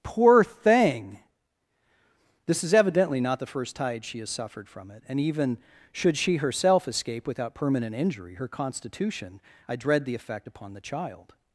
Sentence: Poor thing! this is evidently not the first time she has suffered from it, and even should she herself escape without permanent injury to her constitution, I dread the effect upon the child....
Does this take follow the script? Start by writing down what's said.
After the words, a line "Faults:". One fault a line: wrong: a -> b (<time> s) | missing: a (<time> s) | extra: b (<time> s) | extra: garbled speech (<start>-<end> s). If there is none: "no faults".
Poor thing! this is evidently not the first tide she has suffered from it, and even should she herself escape without permanent injury her constitution, I dread the effect upon the child....
Faults:
wrong: time -> tide (3.8 s)
missing: to (8.4 s)